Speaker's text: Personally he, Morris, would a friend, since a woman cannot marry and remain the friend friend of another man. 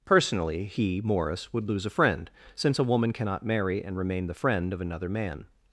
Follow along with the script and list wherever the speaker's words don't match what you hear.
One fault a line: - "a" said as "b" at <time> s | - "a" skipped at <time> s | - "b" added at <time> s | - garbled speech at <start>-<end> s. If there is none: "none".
- "lose" added at 1.7 s
- "friend" skipped at 4.7 s